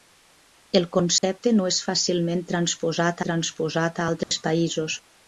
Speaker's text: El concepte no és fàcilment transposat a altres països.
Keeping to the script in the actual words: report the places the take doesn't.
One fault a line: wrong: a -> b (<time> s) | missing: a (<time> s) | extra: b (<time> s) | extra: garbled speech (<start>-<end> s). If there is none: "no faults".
extra: transposat (3.3 s)